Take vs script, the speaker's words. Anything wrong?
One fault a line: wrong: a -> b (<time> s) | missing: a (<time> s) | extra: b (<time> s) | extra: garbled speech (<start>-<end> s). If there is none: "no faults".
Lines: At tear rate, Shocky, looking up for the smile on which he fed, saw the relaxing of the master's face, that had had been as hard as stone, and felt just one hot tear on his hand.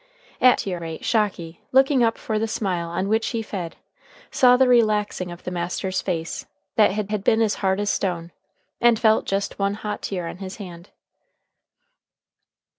no faults